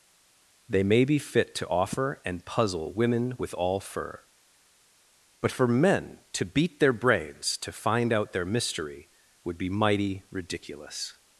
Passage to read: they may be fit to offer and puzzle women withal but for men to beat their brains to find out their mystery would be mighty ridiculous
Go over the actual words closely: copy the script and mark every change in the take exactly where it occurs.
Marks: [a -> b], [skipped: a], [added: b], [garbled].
they may be fit to offer and puzzle women [withal -> with all fur] but for men to beat their brains to find out their mystery would be mighty ridiculous